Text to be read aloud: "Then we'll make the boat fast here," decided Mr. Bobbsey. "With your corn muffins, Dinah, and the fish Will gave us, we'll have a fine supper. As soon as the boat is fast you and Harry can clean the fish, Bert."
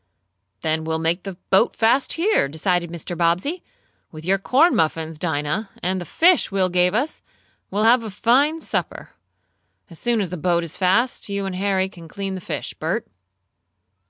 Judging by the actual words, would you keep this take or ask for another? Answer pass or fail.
pass